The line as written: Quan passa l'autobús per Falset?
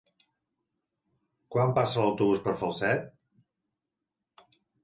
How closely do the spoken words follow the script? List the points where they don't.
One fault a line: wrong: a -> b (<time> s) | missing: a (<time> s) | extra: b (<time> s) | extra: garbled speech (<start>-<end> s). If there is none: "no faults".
no faults